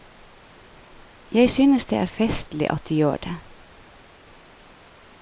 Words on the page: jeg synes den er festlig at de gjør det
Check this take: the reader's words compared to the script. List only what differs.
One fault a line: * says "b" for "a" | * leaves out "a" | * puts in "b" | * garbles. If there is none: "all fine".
* says "det" for "den"